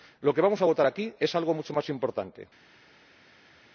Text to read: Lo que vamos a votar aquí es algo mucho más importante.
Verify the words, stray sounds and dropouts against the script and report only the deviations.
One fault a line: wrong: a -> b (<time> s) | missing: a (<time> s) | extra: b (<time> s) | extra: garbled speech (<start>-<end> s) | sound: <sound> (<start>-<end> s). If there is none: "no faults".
no faults